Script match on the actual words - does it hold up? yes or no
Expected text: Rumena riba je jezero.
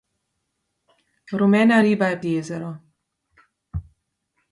yes